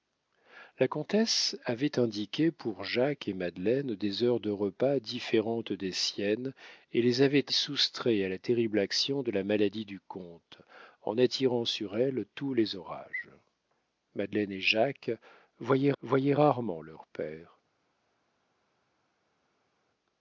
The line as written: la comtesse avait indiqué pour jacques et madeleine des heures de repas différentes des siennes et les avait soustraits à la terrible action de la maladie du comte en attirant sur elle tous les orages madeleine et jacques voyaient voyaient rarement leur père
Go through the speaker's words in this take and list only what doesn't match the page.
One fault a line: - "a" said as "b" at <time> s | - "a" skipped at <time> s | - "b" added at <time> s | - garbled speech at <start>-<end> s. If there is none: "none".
none